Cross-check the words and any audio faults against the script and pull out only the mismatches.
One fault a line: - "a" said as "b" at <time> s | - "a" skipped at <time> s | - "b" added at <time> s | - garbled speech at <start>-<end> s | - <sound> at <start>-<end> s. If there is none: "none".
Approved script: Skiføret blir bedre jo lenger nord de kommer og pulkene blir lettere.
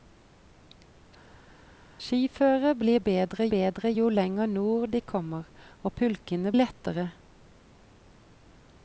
- "bedre" added at 3.5 s
- "blir" skipped at 6.5 s